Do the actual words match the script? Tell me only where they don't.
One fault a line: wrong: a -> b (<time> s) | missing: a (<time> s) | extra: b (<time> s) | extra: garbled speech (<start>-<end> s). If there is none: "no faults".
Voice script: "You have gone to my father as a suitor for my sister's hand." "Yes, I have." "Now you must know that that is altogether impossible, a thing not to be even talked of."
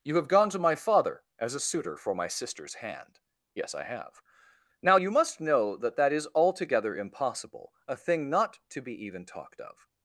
no faults